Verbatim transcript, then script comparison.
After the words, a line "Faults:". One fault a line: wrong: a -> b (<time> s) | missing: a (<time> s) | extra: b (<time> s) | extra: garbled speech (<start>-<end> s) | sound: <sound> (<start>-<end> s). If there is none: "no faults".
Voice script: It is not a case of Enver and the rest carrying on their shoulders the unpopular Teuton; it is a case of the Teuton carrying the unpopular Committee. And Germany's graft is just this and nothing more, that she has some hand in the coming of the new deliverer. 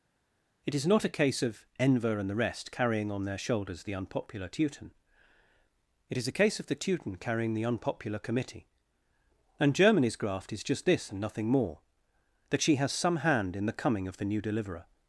It is not a case of Enver and the rest carrying on their shoulders the unpopular Teuton; it is a case of the Teuton carrying the unpopular Committee. And Germany's graft is just this and nothing more, that she has some hand in the coming of the new deliverer.
Faults:
no faults